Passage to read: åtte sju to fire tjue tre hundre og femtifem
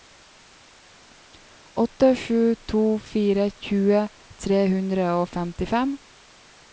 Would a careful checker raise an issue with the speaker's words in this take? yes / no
no